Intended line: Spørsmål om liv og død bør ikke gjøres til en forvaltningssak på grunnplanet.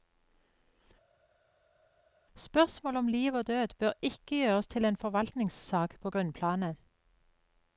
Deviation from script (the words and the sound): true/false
false